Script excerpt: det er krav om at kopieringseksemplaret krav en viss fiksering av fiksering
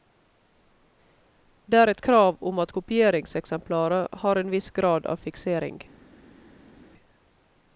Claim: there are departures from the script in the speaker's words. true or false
true